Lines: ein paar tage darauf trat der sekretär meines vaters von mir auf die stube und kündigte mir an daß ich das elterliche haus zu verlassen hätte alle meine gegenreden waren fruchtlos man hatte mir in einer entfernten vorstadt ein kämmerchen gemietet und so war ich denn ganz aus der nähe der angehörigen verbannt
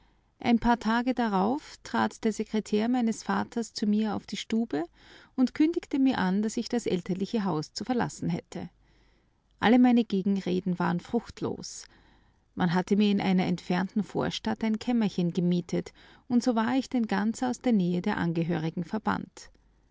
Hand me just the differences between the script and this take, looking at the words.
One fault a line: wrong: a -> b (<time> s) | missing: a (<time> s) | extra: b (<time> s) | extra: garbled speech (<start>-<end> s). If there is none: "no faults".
wrong: von -> zu (3.7 s)